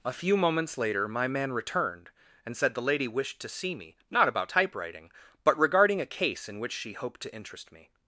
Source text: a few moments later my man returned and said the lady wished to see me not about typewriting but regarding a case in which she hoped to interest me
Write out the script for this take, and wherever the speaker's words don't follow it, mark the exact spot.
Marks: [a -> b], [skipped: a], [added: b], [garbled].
a few moments later my man returned and said the lady wished to see me not about typewriting but regarding a case in which she hoped to interest me